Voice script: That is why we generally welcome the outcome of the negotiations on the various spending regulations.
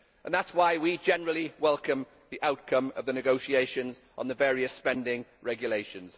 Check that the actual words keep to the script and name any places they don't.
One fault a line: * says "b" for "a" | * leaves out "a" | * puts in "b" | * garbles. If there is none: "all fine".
all fine